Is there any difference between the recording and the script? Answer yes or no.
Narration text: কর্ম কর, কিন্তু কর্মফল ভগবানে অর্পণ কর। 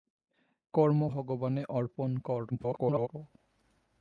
yes